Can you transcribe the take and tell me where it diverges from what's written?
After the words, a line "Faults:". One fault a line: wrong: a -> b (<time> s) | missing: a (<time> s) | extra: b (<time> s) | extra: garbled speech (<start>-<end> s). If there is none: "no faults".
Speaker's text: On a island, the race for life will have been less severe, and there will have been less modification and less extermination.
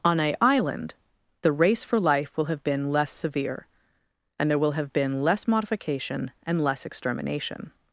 On a island, the race for life will have been less severe, and there will have been less modification and less extermination.
Faults:
no faults